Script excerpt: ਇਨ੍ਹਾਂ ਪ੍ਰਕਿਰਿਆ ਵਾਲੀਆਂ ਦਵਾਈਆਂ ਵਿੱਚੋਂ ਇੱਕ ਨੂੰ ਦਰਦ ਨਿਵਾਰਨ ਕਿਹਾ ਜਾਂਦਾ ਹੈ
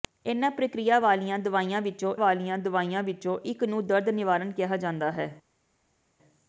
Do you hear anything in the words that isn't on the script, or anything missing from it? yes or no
yes